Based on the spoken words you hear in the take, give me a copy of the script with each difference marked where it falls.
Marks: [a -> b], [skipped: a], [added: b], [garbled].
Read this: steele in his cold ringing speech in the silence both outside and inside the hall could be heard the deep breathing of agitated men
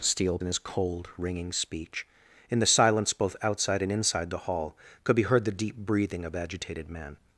steele in his cold ringing speech in the silence both outside and inside the hall could be heard the deep breathing of agitated men